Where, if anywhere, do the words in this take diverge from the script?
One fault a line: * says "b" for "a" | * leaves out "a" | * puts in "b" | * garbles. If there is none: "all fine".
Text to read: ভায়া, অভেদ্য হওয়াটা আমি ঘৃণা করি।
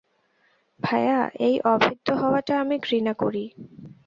* puts in "এই"